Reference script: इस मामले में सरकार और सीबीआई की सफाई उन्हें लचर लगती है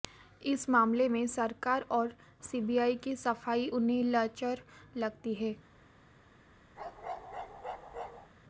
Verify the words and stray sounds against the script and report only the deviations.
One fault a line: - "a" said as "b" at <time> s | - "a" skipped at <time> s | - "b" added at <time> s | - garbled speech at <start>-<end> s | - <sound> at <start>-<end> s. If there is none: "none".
- bark at 6.8-8.3 s